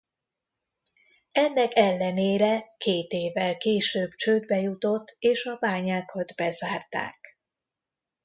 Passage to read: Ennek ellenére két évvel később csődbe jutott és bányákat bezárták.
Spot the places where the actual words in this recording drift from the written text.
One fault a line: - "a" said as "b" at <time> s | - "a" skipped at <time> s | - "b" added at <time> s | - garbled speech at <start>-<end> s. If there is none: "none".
- "a" added at 5.5 s